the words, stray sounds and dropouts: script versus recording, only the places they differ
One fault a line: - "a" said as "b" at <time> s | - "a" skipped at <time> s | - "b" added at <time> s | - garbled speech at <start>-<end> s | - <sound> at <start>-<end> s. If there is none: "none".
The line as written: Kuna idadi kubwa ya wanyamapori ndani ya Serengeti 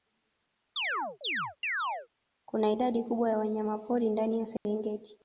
- chirp at 0.8-2.1 s
- dropout at 4.6-4.7 s